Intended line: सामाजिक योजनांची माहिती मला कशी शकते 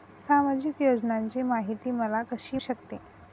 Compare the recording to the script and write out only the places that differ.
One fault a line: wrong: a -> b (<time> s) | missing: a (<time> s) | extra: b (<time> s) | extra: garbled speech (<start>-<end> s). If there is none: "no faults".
no faults